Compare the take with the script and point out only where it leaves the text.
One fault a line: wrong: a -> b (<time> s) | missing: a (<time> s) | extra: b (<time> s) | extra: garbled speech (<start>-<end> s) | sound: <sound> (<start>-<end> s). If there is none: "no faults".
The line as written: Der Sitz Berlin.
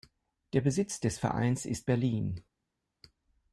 extra: des Vereins ist (1.0 s)